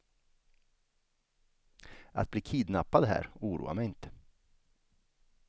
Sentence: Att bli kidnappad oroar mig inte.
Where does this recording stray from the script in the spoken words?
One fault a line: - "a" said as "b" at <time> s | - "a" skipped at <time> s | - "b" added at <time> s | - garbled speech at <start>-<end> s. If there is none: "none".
- "här" added at 3.0 s